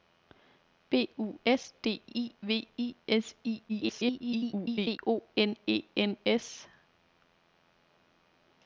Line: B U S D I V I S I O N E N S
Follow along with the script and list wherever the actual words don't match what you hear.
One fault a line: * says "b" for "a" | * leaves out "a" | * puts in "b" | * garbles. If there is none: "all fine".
* garbles